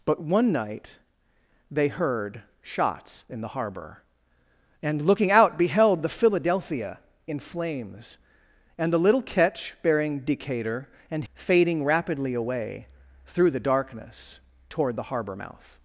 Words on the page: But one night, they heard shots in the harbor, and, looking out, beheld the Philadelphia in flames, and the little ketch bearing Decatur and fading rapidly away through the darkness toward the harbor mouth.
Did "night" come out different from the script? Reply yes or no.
no